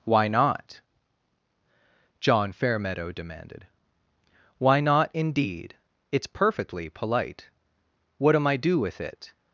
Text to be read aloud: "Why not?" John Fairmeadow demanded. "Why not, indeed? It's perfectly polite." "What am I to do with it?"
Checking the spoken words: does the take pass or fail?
fail